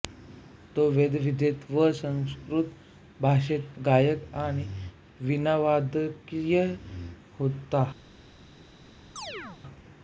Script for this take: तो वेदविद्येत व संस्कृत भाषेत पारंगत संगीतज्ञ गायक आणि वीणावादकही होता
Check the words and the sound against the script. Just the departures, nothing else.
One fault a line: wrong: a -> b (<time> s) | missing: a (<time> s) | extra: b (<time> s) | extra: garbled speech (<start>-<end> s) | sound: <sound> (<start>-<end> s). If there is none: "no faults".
missing: पारंगत संगीतज्ञ (3.7 s)
sound: chirp (9.2-9.6 s)